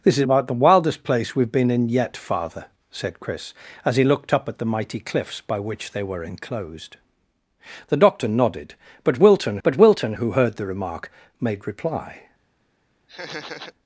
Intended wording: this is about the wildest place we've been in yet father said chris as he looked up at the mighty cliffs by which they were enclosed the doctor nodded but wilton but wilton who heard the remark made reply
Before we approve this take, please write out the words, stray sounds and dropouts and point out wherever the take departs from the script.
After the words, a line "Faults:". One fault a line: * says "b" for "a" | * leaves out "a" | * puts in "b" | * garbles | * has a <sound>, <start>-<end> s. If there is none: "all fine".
this is about the wildest place we've been in yet father said chris as he looked up at the mighty cliffs by which they were enclosed the doctor nodded but wilton but wilton who heard the remark made reply
Faults:
* has a laugh, 13.1-13.7 s